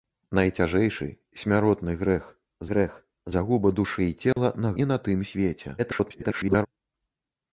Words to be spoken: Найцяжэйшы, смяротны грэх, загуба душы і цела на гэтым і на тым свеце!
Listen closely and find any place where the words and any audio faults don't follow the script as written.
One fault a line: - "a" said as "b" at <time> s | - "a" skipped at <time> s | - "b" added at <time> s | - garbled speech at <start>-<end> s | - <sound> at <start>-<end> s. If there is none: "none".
- "грэх" added at 2.7 s
- dropout at 4.3-4.4 s
- "гэтым" skipped at 4.7 s
- garbled speech at 5.8-6.7 s